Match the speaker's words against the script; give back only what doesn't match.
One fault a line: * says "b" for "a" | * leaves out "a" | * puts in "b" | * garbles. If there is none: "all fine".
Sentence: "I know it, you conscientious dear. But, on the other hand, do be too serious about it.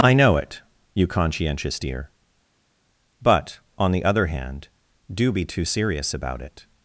all fine